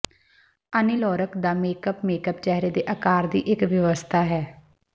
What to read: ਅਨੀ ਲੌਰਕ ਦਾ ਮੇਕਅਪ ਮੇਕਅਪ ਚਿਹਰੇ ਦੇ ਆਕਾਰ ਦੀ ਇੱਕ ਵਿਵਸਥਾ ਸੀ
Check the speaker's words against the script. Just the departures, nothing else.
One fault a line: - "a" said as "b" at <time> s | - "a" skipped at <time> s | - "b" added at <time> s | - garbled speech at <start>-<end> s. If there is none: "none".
- "ਸੀ" said as "ਹੈ" at 4.2 s